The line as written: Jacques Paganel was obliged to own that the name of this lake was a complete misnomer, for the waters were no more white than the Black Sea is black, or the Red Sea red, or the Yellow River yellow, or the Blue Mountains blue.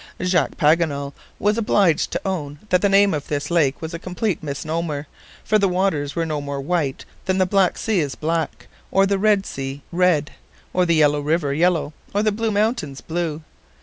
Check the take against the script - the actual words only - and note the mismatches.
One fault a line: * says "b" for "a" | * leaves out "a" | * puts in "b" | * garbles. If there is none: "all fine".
all fine